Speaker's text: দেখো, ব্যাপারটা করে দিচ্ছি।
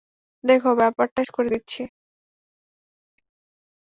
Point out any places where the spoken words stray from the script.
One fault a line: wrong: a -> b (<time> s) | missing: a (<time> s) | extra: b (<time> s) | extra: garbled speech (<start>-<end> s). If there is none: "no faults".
no faults